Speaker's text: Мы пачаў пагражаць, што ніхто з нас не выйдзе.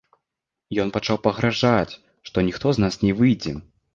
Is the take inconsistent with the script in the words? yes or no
yes